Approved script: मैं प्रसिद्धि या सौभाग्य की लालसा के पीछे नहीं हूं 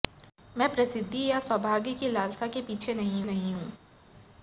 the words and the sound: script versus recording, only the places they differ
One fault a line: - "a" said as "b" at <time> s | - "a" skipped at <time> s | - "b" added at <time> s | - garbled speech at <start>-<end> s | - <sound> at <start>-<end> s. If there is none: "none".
- "नहीं" added at 3.2 s